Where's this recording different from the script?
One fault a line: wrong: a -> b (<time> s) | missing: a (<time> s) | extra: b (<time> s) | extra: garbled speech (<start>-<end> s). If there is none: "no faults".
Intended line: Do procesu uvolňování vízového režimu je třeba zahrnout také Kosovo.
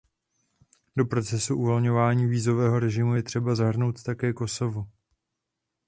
no faults